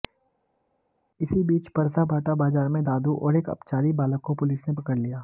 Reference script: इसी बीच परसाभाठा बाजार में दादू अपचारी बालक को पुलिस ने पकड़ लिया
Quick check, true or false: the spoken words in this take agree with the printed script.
false